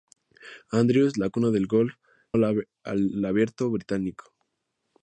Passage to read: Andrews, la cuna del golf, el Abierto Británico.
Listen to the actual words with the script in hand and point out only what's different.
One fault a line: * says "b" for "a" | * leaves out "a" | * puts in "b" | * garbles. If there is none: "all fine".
all fine